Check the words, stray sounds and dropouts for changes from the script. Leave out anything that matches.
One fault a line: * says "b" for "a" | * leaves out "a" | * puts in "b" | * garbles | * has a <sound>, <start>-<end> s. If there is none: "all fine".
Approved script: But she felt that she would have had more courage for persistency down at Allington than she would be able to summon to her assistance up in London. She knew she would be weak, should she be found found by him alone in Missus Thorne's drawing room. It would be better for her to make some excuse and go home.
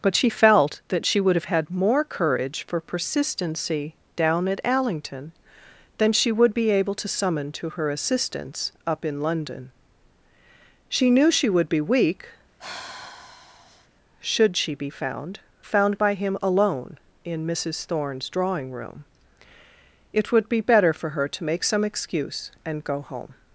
* has a sigh, 12.6-13.9 s